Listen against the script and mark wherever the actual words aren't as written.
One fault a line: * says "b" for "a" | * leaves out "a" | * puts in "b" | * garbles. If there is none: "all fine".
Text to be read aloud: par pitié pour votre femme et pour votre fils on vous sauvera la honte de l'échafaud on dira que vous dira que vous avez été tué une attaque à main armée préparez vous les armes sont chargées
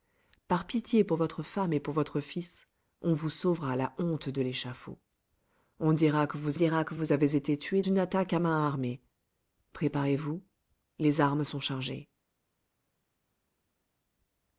all fine